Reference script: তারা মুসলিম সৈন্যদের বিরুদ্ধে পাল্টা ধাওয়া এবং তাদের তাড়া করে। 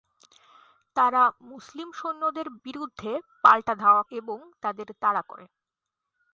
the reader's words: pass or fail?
pass